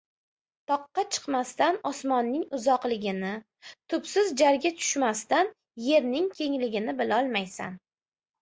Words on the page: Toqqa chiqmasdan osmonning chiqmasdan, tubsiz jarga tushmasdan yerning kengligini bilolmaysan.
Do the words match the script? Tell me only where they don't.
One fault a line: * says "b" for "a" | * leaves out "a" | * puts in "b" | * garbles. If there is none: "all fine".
* says "uzoqligini" for "chiqmasdan"